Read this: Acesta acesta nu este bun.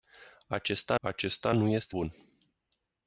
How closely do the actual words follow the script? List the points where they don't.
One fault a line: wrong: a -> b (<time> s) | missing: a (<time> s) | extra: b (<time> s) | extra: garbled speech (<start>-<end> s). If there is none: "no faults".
no faults